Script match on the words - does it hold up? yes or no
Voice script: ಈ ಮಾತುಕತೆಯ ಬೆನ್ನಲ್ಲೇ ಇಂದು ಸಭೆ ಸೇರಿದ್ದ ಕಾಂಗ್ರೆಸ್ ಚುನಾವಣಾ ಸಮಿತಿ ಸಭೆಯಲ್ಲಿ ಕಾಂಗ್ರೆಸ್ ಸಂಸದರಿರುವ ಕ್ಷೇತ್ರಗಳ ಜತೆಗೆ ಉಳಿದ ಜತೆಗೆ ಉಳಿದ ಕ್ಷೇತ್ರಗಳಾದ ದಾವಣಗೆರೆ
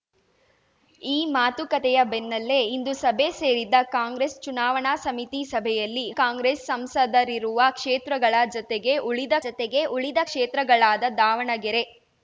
yes